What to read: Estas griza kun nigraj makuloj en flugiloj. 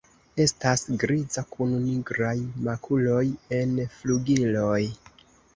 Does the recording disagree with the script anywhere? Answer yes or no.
no